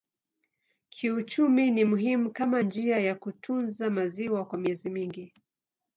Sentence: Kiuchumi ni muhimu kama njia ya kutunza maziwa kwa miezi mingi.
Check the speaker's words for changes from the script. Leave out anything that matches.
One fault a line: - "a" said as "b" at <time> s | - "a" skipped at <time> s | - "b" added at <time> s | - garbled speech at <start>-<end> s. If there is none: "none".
none